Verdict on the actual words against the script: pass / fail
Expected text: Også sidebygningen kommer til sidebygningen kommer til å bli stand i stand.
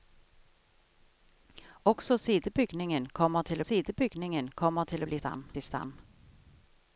pass